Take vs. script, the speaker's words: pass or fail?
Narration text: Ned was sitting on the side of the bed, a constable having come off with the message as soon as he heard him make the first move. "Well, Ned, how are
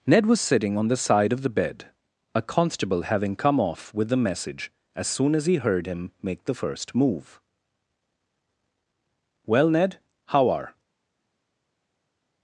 pass